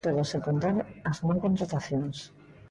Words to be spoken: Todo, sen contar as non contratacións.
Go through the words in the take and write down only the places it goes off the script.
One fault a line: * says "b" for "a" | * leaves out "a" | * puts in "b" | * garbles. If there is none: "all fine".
all fine